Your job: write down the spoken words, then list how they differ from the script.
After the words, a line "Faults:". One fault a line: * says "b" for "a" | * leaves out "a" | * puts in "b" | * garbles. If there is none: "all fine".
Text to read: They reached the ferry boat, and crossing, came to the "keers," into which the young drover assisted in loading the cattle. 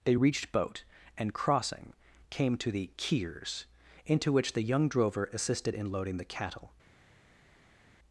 They reached boat, and crossing, came to the "keers," into which the young drover assisted in loading the cattle.
Faults:
* leaves out "the ferry"